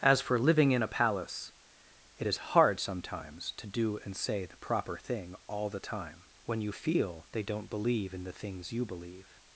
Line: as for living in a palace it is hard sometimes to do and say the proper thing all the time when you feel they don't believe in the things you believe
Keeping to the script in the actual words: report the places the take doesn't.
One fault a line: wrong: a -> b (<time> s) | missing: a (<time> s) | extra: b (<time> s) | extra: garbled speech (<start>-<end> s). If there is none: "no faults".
no faults